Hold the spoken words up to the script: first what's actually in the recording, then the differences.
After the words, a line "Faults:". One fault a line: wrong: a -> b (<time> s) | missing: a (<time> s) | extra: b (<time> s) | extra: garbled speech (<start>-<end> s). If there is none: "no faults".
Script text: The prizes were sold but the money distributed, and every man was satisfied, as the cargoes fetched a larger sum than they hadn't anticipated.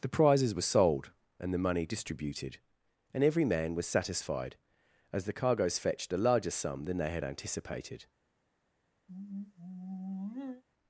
The prizes were sold and the money distributed, and every man was satisfied, as the cargoes fetched a larger sum than they had anticipated.
Faults:
wrong: but -> and (1.4 s)
wrong: hadn't -> had (7.1 s)